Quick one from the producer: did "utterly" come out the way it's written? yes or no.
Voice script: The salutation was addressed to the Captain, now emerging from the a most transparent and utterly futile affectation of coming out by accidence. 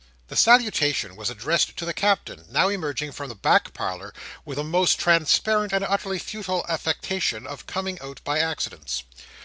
yes